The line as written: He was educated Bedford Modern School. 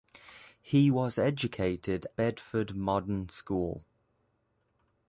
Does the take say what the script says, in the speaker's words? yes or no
yes